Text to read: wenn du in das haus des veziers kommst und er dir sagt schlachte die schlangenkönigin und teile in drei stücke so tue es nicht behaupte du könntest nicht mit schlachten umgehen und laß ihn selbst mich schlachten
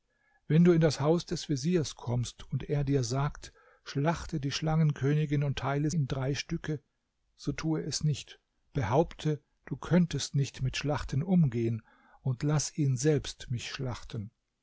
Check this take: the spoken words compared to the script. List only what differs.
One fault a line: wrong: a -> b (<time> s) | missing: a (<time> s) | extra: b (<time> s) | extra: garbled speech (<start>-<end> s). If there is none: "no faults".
no faults